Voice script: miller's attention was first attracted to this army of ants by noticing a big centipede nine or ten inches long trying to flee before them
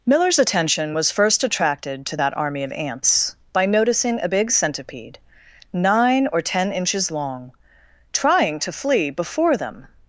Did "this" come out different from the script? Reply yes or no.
yes